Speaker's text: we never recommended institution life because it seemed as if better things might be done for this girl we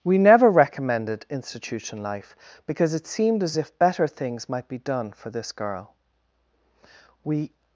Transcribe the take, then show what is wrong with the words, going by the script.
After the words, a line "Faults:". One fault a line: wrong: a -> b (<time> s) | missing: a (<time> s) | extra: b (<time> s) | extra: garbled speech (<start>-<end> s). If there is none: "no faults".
we never recommended institution life because it seemed as if better things might be done for this girl we
Faults:
no faults